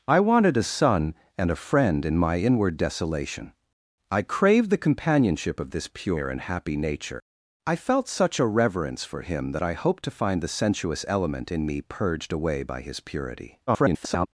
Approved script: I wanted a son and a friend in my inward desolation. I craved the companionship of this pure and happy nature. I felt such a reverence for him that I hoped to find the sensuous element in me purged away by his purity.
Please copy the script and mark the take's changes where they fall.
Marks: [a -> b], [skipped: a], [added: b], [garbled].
I wanted a son and a friend in my inward desolation. I craved the companionship of this pure and happy nature. I felt such a reverence for him that I hoped to find the sensuous element in me purged away by his purity. [garbled]